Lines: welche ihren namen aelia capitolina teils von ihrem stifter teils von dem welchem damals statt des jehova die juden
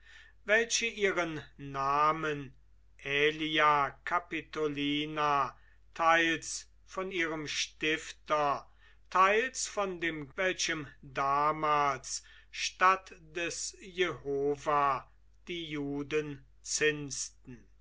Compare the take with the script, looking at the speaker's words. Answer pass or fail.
pass